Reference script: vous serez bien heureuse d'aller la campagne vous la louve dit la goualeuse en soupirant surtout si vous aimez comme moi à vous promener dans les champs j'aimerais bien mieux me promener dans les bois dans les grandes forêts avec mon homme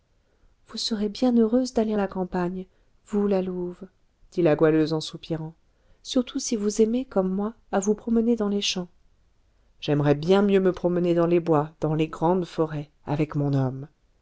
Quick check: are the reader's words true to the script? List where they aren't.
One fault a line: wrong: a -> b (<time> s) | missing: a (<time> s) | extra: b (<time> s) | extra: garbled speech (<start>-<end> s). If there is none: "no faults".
no faults